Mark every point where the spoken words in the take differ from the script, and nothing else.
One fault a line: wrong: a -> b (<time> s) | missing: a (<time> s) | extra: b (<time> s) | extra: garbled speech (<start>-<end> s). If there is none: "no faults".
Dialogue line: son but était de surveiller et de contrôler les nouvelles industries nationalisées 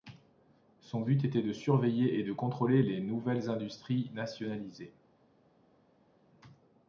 no faults